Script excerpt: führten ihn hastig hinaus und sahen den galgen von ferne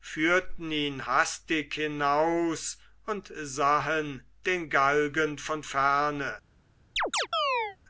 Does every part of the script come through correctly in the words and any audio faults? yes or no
no